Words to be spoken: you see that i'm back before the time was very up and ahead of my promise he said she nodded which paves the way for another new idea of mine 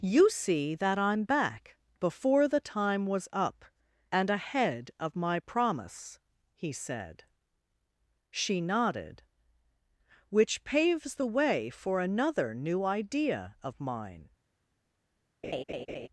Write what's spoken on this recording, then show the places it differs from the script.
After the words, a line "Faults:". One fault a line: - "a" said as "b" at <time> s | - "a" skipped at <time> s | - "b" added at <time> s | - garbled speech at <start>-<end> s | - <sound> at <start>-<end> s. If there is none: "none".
you see that i'm back before the time was up and ahead of my promise he said she nodded which paves the way for another new idea of mine
Faults:
- "very" skipped at 3.3 s
- laugh at 15.4-16.1 s